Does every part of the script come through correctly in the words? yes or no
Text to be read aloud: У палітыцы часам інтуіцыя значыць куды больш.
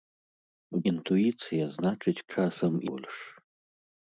no